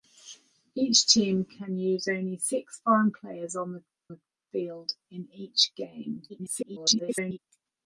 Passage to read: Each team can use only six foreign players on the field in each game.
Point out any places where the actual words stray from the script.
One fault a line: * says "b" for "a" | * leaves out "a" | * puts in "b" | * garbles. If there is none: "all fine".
* puts in "the"
* garbles